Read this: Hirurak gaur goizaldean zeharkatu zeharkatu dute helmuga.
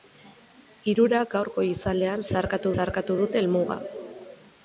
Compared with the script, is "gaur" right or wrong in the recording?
right